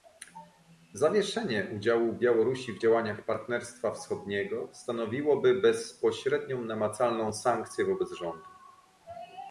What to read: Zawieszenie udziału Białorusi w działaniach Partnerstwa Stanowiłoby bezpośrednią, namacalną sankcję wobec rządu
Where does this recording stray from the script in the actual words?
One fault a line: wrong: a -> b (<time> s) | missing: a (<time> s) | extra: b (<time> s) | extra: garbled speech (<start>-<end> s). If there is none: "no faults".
extra: Wschodniego (3.9 s)